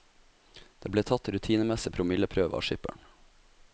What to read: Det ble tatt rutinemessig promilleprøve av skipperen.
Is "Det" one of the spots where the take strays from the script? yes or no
no